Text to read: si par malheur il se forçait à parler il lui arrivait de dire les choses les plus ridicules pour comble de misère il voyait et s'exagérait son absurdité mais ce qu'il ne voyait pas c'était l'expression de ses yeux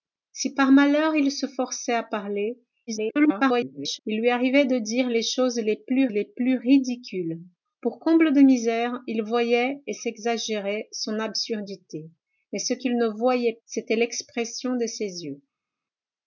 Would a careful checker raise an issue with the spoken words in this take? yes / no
yes